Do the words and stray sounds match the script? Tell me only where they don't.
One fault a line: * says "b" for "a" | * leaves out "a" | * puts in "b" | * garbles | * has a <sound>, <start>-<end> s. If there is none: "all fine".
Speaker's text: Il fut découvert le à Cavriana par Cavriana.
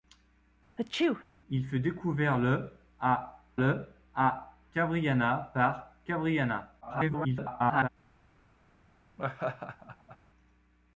* has a sneeze, 0.8-1.2 s
* puts in "le à"
* garbles
* has a laugh, 9.2-10.2 s